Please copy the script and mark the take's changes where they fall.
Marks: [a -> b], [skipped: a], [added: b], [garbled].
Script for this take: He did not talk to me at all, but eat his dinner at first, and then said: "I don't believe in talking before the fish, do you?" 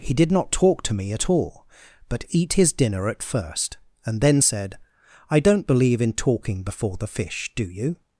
He did not talk to me at all, but eat his dinner at first, and then said: "I don't believe in talking before the fish, do you?"